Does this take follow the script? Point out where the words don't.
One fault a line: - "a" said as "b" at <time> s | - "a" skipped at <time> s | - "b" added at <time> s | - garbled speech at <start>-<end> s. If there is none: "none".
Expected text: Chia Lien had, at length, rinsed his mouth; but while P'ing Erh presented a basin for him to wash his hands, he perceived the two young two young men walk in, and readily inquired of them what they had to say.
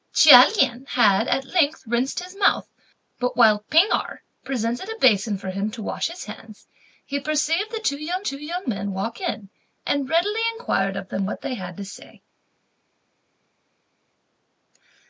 none